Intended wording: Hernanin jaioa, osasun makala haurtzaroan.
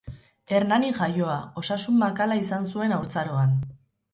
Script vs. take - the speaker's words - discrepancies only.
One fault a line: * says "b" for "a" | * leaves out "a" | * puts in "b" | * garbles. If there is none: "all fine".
* puts in "izan zuen"